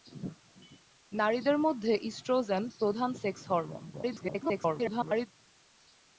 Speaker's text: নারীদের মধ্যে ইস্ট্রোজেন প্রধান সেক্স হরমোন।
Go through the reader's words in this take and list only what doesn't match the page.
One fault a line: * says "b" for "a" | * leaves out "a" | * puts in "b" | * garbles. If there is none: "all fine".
* garbles